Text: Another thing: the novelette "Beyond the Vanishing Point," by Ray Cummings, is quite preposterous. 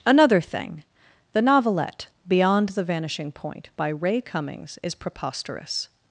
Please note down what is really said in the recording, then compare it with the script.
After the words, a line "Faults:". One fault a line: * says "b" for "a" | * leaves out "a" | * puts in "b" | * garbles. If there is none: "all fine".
Another thing: the novelette "Beyond the Vanishing Point," by Ray Cummings, is preposterous.
Faults:
* leaves out "quite"